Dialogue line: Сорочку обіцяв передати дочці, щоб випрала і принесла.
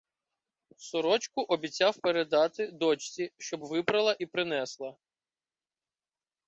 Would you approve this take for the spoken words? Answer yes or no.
yes